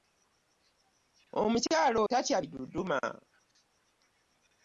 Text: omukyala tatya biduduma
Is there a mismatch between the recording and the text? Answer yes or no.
no